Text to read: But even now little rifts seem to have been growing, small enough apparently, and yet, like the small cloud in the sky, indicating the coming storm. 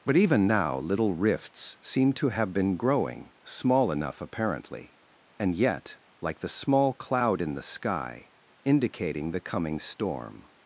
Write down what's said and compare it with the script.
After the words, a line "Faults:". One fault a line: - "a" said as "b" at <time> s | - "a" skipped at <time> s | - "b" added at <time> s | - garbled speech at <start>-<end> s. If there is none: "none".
But even now little rifts seem to have been growing, small enough apparently, and yet, like the small cloud in the sky, indicating the coming storm.
Faults:
none